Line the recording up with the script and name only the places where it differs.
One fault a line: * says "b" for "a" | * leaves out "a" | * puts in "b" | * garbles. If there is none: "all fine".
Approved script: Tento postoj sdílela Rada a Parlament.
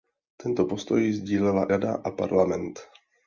all fine